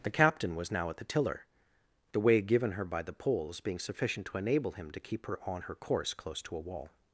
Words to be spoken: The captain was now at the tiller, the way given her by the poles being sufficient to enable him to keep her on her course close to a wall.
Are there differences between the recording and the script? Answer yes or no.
no